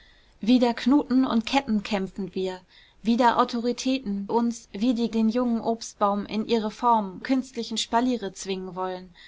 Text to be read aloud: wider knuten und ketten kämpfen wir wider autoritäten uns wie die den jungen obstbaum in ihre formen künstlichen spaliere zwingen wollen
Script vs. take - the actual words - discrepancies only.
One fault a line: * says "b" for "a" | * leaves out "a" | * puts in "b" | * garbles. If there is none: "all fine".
all fine